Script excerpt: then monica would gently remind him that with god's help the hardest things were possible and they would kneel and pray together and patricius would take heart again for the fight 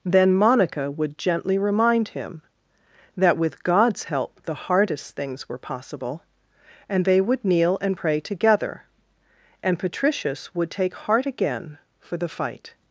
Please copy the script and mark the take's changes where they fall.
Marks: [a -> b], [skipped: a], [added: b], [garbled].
then monica would gently remind him that with god's help the hardest things were possible and they would kneel and pray together and patricius would take heart again for the fight